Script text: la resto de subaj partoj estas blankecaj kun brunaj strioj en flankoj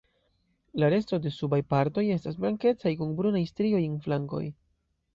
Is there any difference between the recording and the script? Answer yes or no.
no